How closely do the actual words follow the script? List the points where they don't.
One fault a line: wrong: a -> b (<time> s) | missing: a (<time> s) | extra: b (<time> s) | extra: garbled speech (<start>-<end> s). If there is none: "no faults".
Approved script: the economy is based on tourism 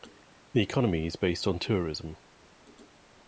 no faults